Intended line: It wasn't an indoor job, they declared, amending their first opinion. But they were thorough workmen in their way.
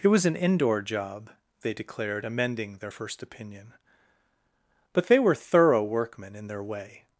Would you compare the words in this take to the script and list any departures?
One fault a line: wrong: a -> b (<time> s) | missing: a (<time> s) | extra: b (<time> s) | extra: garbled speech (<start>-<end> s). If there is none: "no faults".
wrong: wasn't -> was (0.1 s)